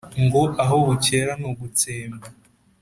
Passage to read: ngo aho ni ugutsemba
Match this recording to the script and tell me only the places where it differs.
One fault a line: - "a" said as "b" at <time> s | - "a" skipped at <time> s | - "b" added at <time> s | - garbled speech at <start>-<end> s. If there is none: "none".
- "bukera" added at 0.9 s